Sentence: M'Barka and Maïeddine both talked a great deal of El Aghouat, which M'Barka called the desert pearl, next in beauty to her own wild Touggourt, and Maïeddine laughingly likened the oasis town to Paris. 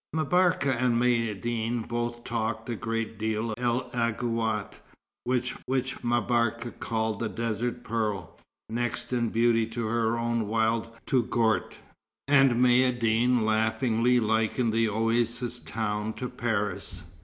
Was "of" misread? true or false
true